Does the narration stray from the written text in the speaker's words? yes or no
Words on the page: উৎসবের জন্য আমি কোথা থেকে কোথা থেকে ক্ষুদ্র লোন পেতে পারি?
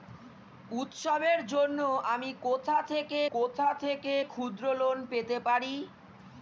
no